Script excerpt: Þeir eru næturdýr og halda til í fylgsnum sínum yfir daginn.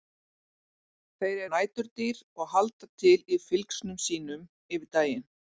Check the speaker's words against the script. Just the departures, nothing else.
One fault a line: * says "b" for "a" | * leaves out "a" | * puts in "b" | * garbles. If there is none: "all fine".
* leaves out "eru"